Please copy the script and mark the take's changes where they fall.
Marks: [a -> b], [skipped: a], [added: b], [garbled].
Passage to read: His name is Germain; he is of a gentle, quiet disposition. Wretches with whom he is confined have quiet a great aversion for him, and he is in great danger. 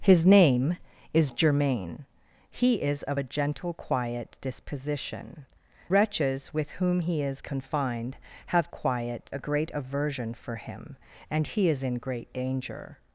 His name is Germain; he is of a gentle, quiet disposition. Wretches with whom he is confined have quiet a great aversion for him, and he is in great danger.